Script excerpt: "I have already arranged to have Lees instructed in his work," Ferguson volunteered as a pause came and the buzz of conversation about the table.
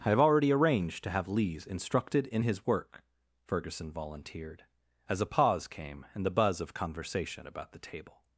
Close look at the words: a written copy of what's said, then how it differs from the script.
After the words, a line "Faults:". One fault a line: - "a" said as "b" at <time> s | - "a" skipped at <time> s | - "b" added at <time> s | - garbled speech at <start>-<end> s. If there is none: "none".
"I have already arranged to have Lees instructed in his work," Ferguson volunteered as a pause came and the buzz of conversation about the table.
Faults:
none